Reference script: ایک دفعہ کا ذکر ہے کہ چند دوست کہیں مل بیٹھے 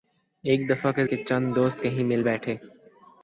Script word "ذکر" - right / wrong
wrong